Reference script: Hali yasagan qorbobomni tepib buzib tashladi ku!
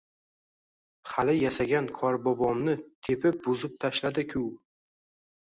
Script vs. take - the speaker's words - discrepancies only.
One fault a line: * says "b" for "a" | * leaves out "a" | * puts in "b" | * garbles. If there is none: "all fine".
all fine